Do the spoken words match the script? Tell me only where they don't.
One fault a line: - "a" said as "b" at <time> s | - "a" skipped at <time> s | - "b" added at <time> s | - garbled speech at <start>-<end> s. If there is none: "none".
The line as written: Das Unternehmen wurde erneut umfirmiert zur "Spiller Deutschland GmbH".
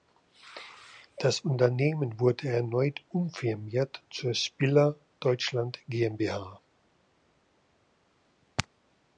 none